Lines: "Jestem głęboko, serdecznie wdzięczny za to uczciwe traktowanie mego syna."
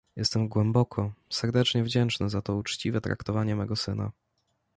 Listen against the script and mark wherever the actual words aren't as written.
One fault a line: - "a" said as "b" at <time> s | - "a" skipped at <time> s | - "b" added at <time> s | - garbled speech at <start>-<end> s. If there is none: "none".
none